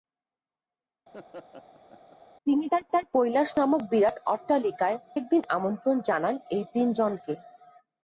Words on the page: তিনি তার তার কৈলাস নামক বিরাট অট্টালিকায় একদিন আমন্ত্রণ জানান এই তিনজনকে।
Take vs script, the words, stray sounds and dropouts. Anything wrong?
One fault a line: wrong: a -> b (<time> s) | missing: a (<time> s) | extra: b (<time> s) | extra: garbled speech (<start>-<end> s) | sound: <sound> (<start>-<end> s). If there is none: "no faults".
sound: laugh (1.1-2.2 s)